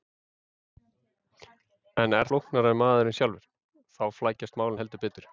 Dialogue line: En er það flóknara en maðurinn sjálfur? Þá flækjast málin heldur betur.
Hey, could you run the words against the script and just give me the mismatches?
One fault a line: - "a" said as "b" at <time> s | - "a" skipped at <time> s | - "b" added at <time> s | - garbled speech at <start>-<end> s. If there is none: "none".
- "það" skipped at 2.3 s